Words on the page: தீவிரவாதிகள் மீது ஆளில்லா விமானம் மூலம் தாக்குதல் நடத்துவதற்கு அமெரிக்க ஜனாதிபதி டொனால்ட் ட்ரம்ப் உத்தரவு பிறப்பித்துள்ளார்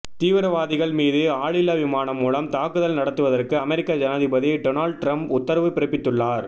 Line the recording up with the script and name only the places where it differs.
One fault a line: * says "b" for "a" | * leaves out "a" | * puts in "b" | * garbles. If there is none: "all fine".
all fine